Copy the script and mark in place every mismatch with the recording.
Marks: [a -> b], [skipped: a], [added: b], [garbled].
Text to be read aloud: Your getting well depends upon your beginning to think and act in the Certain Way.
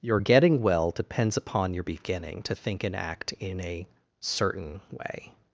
Your getting well depends upon your beginning to think and act in [the -> a] Certain Way.